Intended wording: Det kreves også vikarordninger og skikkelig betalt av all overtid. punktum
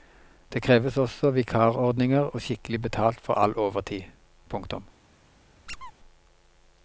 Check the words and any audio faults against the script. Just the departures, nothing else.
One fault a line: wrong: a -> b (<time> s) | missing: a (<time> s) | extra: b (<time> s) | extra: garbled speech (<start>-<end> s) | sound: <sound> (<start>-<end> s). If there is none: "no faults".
wrong: av -> for (3.2 s)
sound: squeak (5.7-5.9 s)